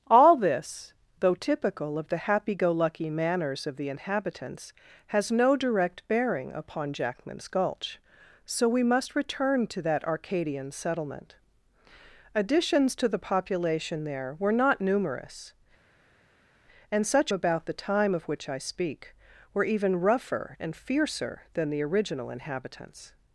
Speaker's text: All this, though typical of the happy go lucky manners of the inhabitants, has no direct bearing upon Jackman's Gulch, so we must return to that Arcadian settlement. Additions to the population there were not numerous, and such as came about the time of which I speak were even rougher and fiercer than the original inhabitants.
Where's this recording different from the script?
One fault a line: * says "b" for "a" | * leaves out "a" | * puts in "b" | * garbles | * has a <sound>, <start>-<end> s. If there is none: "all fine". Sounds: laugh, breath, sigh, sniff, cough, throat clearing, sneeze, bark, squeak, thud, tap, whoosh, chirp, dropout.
* leaves out "as came"